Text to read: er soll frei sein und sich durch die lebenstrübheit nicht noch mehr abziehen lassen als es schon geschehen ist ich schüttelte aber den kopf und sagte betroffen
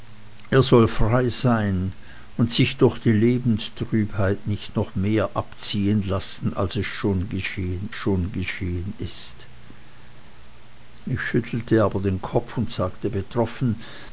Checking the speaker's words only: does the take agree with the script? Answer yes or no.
no